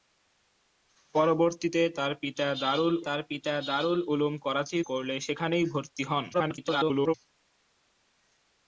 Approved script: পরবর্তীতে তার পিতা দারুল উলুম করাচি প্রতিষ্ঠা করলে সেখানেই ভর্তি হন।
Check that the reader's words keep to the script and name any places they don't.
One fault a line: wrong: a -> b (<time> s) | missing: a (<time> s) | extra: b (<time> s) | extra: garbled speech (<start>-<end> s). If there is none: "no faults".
extra: তার পিতা দারুল (3.1 s)
missing: প্রতিষ্ঠা (4.8 s)
extra: garbled speech (6.3-7.1 s)